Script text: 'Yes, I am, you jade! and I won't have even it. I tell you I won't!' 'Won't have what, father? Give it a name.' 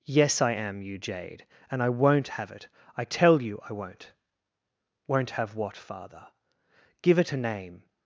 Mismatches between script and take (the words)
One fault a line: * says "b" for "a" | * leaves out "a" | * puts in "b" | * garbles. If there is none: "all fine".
* leaves out "even"